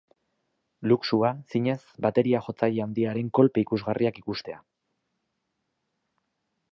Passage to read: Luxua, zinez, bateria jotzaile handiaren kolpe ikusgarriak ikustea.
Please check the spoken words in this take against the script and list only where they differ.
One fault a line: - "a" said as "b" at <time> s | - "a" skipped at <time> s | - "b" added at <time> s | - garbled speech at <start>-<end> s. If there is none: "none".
none